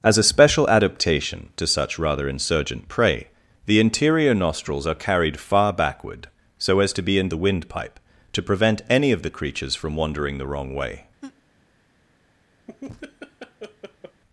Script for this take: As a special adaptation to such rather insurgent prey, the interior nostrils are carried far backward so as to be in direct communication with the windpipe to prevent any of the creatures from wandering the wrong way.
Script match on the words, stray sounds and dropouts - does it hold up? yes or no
no